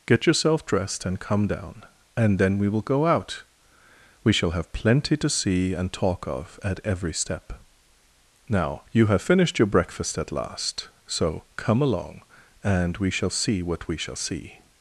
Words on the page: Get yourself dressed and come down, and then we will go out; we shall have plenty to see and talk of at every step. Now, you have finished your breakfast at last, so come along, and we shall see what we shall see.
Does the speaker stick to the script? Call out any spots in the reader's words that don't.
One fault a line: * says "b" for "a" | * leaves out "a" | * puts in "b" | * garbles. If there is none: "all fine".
all fine